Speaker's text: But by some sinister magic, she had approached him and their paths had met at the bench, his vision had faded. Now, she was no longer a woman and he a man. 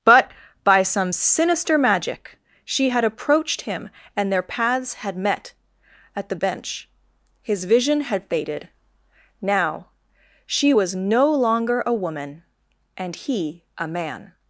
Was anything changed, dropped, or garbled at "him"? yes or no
no